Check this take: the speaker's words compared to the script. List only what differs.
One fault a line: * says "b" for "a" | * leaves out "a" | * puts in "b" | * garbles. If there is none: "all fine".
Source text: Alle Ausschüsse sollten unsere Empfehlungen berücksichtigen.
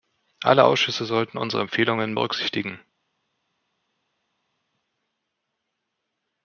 all fine